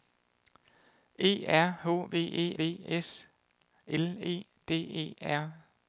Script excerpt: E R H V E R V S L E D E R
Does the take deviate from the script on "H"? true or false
false